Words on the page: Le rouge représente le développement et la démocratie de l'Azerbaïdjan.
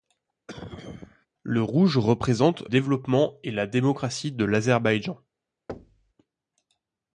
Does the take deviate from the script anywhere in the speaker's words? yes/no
yes